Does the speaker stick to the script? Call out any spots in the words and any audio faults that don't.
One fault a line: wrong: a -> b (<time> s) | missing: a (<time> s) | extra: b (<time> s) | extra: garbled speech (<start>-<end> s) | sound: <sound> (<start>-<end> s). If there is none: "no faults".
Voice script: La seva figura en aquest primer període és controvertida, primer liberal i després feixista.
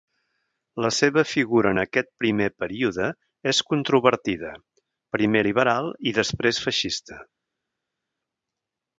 no faults